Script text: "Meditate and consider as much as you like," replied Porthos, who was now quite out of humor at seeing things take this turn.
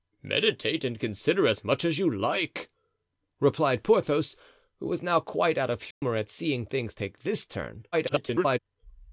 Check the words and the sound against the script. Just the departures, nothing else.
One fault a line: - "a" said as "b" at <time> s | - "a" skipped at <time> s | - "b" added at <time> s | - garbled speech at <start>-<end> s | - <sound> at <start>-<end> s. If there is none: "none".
- dropout at 5.9-6.0 s
- garbled speech at 7.9-8.6 s